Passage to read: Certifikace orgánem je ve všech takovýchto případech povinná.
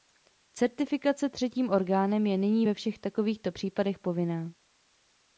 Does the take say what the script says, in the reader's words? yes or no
no